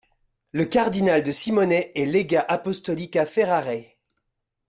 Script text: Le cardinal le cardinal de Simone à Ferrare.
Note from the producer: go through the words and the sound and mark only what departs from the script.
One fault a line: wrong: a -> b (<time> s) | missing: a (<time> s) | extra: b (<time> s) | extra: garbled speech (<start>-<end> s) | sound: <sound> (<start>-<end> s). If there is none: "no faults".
wrong: le cardinal de Simone -> de Simone est légat apostolique (1.2 s)